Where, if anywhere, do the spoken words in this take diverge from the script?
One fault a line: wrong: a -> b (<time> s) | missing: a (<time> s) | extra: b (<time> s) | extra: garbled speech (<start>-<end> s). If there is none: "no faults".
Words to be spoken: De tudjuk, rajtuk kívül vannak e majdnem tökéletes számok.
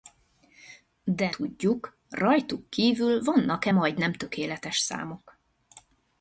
no faults